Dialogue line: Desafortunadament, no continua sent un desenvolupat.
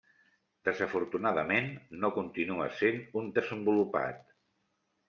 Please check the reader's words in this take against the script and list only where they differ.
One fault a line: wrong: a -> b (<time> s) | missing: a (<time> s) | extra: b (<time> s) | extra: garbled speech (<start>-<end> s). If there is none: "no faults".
no faults